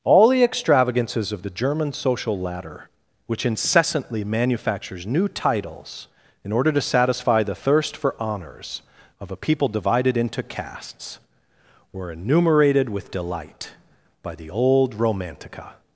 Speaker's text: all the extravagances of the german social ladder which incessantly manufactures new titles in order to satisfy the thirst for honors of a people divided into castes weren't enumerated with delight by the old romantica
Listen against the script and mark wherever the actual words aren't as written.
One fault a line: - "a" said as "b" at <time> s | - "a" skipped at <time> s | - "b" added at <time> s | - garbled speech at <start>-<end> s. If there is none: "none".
- "weren't" said as "were" at 11.9 s